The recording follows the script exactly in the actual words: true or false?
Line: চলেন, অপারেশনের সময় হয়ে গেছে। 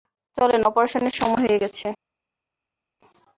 true